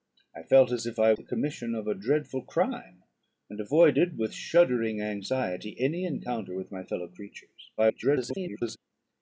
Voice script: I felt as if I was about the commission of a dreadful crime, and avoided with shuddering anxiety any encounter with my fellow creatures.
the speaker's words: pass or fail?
fail